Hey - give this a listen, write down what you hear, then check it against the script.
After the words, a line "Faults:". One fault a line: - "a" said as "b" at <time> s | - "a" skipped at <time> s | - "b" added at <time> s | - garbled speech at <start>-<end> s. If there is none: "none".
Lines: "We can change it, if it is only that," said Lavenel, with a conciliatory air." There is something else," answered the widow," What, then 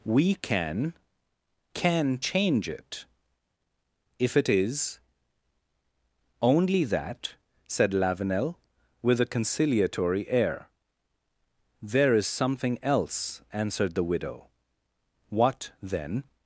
"We can can change it, if it is only that," said Lavenel, with a conciliatory air." There is something else," answered the widow," What, then
Faults:
- "can" added at 1.7 s